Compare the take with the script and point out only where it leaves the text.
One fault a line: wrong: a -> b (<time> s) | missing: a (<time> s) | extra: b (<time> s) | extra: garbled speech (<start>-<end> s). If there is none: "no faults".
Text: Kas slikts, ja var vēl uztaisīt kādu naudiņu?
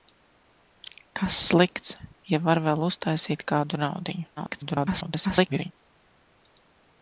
extra: garbled speech (4.4-5.7 s)